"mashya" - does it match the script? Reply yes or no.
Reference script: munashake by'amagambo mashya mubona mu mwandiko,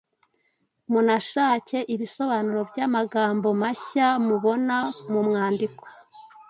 yes